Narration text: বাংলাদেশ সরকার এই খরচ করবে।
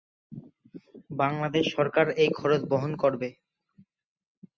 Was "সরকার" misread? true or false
false